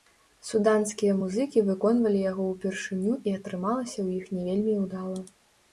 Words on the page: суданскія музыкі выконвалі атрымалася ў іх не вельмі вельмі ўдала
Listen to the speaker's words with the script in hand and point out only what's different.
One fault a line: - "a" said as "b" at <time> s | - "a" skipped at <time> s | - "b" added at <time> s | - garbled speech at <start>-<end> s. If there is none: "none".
- "яго ўпершыню і" added at 2.3 s
- "вельмі" skipped at 4.8 s